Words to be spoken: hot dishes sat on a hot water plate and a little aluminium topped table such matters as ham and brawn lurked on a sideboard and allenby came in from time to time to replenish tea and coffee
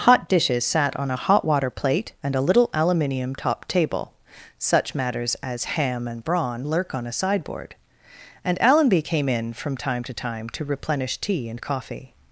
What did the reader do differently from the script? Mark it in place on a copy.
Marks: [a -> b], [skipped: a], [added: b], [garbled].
hot dishes sat on a hot water plate and a little aluminium topped table such matters as ham and brawn [lurked -> lurk] on a sideboard and allenby came in from time to time to replenish tea and coffee